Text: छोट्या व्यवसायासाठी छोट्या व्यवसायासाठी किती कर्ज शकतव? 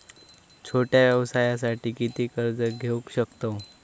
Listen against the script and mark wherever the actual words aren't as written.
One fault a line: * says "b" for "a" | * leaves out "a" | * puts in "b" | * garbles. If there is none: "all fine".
* leaves out "छोट्या व्यवसायासाठी"
* puts in "घेऊ"